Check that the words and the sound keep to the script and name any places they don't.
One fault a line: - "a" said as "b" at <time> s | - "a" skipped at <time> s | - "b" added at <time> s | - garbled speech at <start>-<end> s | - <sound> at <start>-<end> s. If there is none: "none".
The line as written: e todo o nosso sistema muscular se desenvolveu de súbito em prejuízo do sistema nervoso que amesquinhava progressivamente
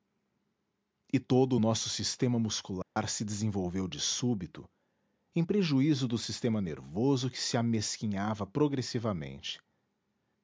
- dropout at 2.8-3.0 s
- "se" added at 7.4 s